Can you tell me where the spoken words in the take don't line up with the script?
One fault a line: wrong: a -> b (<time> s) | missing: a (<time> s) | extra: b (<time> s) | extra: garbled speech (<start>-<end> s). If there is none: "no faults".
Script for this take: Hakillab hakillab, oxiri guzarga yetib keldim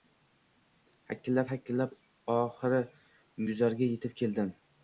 no faults